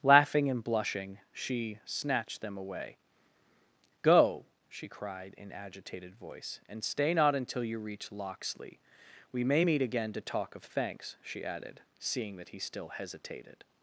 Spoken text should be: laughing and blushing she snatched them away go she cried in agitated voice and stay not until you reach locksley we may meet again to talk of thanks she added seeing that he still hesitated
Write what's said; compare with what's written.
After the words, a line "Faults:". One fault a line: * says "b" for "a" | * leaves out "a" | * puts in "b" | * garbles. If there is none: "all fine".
laughing and blushing she snatched them away go she cried in agitated voice and stay not until you reach locksley we may meet again to talk of thanks she added seeing that he still hesitated
Faults:
all fine